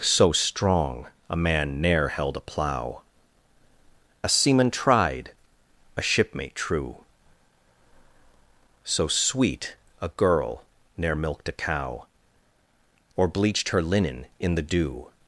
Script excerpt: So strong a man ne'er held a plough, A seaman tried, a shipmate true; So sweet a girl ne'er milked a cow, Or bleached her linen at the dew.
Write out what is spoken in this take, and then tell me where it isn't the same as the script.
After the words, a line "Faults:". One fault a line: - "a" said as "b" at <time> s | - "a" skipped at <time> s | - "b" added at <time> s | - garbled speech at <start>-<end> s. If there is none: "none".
So strong a man ne'er held a plough, A seaman tried, a shipmate true; So sweet a girl ne'er milked a cow, Or bleached her linen in the dew.
Faults:
- "at" said as "in" at 14.4 s